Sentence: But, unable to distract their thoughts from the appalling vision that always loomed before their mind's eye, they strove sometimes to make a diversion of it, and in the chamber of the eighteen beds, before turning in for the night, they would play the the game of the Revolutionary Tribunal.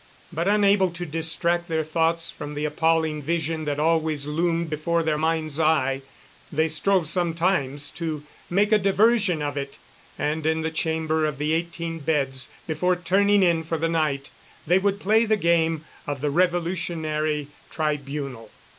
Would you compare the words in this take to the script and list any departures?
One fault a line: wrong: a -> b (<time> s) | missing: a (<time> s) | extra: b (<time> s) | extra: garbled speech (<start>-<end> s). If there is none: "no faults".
missing: the (15.4 s)